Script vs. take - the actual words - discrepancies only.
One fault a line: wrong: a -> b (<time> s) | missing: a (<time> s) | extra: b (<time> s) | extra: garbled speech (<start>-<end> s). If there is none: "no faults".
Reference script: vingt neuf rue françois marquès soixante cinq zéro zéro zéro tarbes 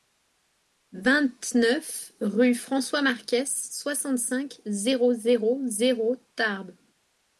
no faults